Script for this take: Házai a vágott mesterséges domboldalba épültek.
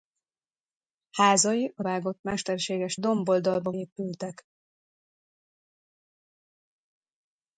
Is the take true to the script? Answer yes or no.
yes